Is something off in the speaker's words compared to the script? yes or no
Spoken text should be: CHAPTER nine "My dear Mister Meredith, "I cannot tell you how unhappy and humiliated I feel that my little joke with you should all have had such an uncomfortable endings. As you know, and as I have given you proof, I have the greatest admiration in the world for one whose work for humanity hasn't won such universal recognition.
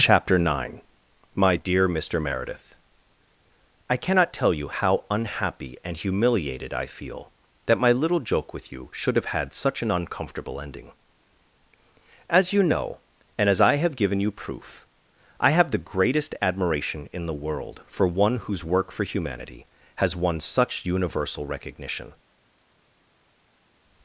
yes